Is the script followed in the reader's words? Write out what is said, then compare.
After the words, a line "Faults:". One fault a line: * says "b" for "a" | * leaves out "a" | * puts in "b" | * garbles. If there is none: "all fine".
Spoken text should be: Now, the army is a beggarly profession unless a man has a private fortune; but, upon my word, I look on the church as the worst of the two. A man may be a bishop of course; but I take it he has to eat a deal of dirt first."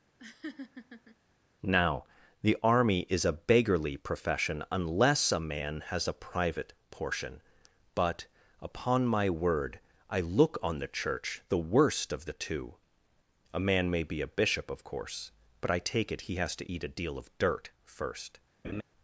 Now, the army is a beggarly profession unless a man has a private portion; but, upon my word, I look on the church the worst of the two. A man may be a bishop of course; but I take it he has to eat a deal of dirt first."
Faults:
* says "portion" for "fortune"
* leaves out "as"